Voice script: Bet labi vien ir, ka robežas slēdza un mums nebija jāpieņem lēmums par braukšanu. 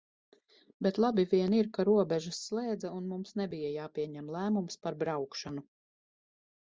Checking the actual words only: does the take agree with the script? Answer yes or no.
yes